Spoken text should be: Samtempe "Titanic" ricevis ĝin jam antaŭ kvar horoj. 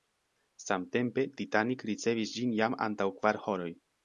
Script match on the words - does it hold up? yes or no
yes